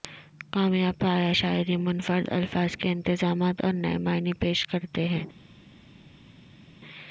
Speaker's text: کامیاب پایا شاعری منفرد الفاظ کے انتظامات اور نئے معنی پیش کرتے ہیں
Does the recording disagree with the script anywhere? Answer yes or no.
no